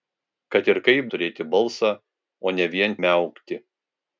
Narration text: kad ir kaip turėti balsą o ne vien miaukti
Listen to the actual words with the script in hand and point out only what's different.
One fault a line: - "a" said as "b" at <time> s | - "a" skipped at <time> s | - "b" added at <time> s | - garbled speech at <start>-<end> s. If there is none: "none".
none